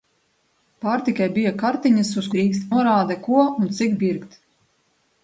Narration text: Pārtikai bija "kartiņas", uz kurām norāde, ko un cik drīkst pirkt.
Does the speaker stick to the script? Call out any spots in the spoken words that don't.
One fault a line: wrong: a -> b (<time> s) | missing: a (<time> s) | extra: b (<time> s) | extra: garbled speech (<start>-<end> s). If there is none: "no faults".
wrong: kurām -> drīkst (2.4 s)
missing: drīkst (4.0 s)